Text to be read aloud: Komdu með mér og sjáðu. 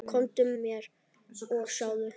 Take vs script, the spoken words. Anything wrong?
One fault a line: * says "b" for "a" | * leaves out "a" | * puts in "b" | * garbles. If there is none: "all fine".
* leaves out "með"